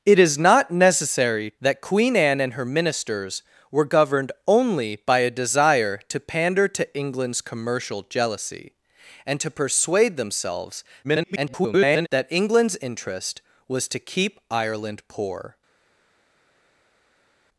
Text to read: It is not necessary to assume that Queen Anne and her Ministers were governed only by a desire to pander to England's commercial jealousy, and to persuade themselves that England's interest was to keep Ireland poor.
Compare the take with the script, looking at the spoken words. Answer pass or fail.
fail